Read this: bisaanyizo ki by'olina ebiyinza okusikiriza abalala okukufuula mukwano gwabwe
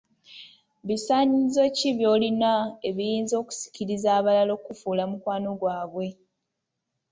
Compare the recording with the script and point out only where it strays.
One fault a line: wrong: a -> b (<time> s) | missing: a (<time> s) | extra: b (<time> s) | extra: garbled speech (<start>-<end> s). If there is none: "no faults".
no faults